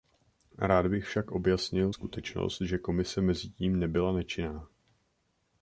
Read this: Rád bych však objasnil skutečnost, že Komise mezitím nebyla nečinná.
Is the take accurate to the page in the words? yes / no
yes